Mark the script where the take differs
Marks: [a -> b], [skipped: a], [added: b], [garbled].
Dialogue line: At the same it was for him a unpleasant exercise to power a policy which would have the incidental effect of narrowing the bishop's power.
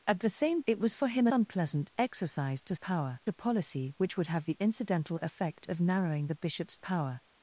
At the same it was for him a unpleasant exercise to power a policy which would have the incidental effect of narrowing the bishop's power.